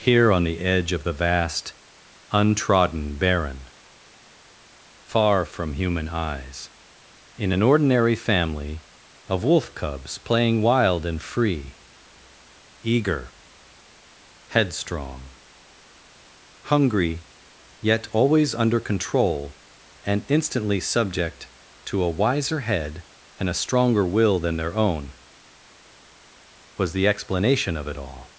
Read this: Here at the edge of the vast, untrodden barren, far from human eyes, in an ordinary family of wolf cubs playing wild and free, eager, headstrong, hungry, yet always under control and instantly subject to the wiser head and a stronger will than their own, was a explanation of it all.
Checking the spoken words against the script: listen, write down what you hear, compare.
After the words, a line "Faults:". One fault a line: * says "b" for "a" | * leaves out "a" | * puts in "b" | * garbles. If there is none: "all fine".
Here on the edge of the vast, untrodden barren, far from human eyes, in an ordinary family of wolf cubs playing wild and free, eager, headstrong, hungry, yet always under control and instantly subject to a wiser head and a stronger will than their own, was the explanation of it all.
Faults:
* says "on" for "at"
* says "a" for "the"
* says "the" for "a"